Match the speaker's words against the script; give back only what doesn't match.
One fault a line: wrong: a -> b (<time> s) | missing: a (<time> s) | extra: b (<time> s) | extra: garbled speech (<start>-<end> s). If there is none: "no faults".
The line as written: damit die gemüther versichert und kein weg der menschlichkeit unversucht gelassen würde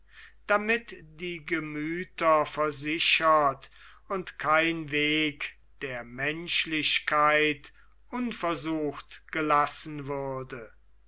no faults